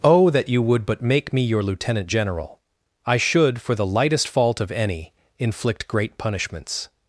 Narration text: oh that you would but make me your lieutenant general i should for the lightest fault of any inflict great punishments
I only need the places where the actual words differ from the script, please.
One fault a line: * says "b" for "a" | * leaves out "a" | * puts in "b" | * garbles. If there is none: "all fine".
all fine